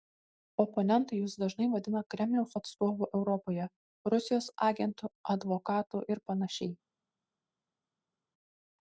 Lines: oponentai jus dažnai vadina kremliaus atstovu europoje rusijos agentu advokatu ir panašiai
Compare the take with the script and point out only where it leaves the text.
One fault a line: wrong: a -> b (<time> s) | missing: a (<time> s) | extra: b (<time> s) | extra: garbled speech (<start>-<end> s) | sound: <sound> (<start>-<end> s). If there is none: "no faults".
no faults